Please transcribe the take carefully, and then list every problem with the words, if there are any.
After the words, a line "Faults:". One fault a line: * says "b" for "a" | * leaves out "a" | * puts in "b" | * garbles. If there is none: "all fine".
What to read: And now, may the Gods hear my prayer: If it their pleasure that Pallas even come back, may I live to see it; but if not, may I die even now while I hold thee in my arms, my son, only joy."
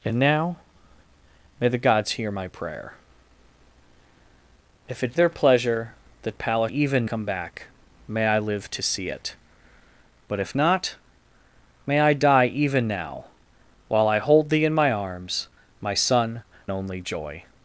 And now, may the Gods hear my prayer: If it their pleasure that Pallas even come back, may I live to see it; but if not, may I die even now while I hold thee in my arms, my son, only joy."
Faults:
all fine